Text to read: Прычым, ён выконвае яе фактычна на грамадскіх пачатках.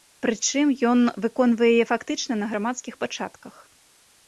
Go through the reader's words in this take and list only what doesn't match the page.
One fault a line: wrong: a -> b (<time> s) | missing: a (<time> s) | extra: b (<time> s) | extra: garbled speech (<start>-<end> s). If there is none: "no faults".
no faults